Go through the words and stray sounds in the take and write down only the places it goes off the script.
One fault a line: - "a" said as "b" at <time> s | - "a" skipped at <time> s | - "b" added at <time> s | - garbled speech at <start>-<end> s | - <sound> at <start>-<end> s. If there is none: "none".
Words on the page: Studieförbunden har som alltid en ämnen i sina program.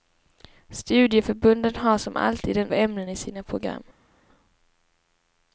none